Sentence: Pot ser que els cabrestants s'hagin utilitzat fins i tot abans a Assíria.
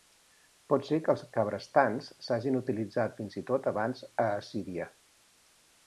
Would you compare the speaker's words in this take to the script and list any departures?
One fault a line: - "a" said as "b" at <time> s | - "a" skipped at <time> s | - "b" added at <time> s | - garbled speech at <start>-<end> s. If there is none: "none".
none